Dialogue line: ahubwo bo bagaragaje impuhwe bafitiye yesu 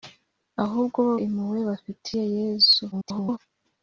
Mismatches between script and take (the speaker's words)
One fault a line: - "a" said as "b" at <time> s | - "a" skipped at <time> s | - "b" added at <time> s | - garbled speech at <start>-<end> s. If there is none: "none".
- "bagaragaje" skipped at 1.1 s
- garbled speech at 2.9-3.4 s